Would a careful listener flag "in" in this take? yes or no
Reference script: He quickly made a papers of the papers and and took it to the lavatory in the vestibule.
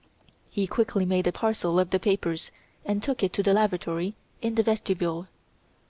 no